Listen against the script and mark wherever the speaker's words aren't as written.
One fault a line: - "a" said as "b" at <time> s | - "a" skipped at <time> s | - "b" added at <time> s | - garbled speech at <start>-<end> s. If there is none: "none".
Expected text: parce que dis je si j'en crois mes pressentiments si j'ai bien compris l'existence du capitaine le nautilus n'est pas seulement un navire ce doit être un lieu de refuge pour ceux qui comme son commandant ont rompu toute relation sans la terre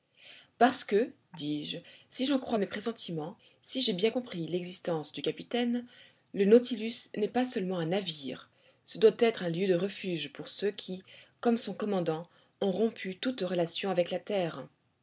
- "sans" said as "avec" at 13.9 s